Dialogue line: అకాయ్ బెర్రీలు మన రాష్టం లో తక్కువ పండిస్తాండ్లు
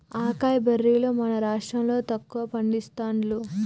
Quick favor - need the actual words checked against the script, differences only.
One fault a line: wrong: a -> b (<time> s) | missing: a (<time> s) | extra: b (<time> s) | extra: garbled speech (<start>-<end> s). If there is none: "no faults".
no faults